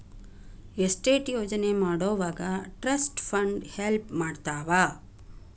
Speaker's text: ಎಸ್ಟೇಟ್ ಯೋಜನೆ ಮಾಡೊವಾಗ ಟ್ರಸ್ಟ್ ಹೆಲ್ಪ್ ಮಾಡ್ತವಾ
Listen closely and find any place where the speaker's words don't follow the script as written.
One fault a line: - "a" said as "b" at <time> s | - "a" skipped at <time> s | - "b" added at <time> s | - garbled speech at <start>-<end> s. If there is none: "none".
- "ಫಂಡ್" added at 3.2 s